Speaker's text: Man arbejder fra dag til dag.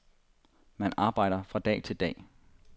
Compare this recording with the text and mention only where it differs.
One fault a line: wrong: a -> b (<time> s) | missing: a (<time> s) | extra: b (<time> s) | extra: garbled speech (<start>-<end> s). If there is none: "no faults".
no faults